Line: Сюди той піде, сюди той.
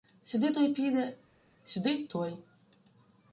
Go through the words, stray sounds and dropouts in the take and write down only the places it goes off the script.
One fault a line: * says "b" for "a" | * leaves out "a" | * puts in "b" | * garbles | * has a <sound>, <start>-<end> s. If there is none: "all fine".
all fine